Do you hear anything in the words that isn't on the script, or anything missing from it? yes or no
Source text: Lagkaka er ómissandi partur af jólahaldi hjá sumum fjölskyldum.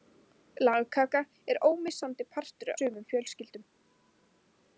yes